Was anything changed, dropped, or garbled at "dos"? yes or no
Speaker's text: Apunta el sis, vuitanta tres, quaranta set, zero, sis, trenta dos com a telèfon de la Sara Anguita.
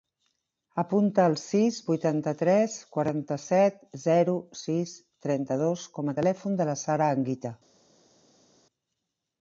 no